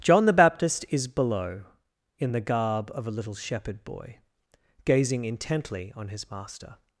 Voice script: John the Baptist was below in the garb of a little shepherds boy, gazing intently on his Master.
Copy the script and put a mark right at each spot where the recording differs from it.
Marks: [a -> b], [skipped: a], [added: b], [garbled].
John the Baptist [was -> is] below in the garb of a little [shepherds -> shepherd] boy, gazing intently on his Master.